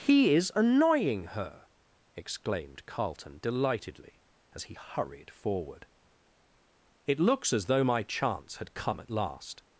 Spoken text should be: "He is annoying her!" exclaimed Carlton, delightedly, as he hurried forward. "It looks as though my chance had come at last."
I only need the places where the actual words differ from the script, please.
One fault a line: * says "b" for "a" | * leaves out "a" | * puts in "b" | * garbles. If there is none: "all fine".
all fine